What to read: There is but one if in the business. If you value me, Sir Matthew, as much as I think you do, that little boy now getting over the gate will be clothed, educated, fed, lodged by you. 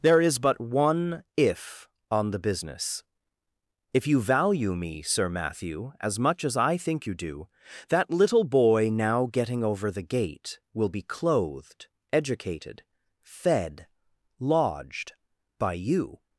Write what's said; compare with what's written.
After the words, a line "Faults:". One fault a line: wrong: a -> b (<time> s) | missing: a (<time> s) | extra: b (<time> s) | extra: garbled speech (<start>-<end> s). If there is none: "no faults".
There is but one if on the business. If you value me, Sir Matthew, as much as I think you do, that little boy now getting over the gate will be clothed, educated, fed, lodged by you.
Faults:
wrong: in -> on (2.1 s)